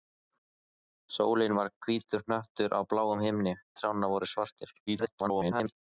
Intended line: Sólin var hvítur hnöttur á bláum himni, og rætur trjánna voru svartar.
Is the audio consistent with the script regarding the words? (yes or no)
no